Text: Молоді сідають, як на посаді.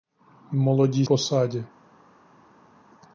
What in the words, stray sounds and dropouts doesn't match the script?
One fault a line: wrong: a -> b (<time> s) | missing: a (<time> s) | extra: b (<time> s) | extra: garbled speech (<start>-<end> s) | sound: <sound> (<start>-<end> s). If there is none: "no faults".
missing: сідають як на (1.1 s)